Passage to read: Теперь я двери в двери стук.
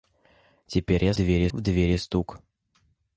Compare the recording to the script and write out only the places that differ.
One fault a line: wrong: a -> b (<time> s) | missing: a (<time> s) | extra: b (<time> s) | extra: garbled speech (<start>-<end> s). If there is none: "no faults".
no faults